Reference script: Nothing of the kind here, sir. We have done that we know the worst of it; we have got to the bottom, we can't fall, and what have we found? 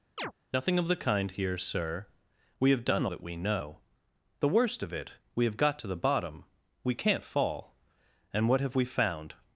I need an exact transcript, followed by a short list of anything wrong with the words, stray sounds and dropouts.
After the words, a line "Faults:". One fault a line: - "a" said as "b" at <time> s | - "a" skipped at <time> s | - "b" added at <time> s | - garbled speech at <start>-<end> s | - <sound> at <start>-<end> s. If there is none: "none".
Nothing of the kind here, sir. We have done that we know the worst of it; we have got to the bottom, we can't fall, and what have we found?
Faults:
- chirp at 0.2-0.3 s